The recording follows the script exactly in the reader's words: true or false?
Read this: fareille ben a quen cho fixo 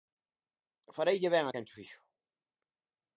true